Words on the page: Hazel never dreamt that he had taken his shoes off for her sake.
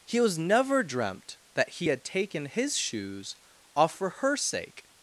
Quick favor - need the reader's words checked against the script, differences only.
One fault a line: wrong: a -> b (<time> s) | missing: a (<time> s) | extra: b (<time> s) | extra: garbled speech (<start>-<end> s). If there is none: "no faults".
wrong: Hazel -> He was (0.1 s)